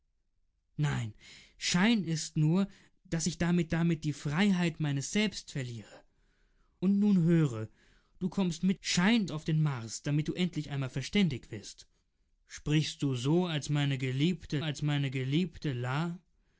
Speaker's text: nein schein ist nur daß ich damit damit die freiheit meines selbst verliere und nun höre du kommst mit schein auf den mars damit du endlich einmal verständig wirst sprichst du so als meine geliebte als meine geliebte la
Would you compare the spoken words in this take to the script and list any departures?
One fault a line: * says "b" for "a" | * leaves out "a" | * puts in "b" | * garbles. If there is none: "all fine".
all fine